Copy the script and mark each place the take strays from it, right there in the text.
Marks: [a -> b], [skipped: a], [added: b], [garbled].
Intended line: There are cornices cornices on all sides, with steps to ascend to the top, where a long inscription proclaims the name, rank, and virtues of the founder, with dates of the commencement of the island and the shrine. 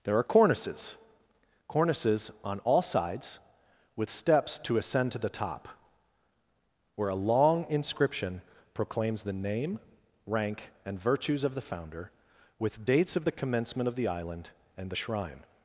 There are cornices cornices on all sides, with steps to ascend to the top, where a long inscription proclaims the name, rank, and virtues of the founder, with dates of the commencement of the island and the shrine.